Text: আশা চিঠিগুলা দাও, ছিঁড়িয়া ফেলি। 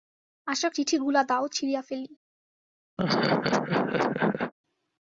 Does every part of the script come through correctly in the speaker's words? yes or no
yes